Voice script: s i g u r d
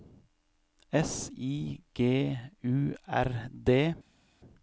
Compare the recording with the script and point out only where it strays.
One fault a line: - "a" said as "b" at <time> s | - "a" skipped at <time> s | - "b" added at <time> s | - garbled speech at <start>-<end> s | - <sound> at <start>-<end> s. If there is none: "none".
none